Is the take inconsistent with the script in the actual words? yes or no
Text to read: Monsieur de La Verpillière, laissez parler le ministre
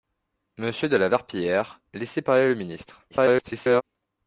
yes